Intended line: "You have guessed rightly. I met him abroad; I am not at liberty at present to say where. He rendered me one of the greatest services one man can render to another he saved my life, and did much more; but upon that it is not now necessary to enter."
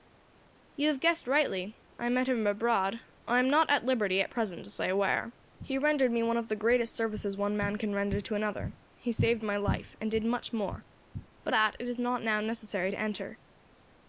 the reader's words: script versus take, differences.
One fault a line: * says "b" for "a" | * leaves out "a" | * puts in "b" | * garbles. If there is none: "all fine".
* leaves out "upon"